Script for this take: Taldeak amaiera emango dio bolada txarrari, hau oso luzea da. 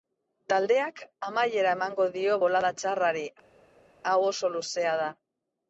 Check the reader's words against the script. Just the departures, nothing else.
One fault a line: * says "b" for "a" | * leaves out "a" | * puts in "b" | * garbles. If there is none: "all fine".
all fine